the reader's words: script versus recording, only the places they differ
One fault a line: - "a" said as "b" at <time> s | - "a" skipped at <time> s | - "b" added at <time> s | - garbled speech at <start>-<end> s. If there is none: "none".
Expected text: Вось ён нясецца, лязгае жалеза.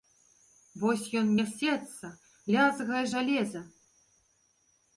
none